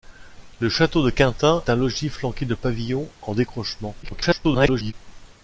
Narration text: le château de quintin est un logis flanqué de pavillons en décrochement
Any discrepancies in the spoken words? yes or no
yes